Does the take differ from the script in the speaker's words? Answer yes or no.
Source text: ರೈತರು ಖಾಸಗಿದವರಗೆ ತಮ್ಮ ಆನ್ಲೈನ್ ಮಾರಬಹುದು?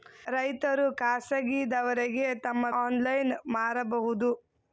no